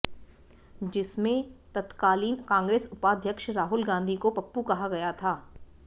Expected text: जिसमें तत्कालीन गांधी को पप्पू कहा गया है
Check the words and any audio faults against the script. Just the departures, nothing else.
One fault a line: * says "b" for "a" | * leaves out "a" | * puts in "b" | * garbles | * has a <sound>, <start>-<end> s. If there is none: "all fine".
* puts in "कांग्रेस उपाध्यक्ष राहुल"
* says "था" for "है"